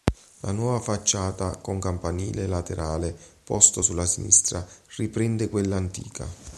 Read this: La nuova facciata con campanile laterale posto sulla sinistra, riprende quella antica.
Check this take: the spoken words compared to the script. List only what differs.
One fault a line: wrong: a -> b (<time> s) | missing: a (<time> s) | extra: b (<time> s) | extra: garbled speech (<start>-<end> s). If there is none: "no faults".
no faults